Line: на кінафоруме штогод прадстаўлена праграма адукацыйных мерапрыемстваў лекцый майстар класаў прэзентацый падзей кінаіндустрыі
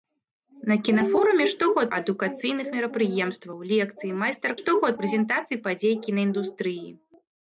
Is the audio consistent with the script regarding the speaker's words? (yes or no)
no